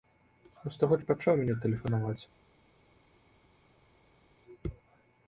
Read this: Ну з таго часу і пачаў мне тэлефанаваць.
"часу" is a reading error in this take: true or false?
true